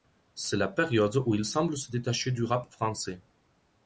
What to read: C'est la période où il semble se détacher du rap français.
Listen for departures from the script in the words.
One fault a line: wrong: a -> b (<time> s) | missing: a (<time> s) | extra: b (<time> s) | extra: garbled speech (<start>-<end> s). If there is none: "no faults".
no faults